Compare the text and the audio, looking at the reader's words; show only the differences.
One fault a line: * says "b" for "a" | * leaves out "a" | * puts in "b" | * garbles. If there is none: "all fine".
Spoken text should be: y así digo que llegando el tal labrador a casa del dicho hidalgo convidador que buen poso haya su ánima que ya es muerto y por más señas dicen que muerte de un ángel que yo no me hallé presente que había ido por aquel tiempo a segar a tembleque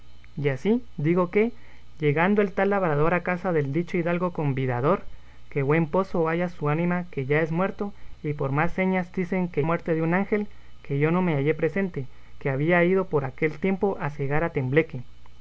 all fine